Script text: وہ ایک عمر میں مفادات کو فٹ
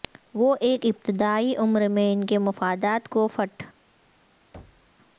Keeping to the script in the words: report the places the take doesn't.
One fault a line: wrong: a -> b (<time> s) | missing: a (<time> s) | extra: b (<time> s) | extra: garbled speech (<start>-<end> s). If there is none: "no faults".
extra: ابتدائی (0.8 s)
extra: ان کے (2.1 s)